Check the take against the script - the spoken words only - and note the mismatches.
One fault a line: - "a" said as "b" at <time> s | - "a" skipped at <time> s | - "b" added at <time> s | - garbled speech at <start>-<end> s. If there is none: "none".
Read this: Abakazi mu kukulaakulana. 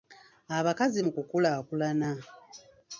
none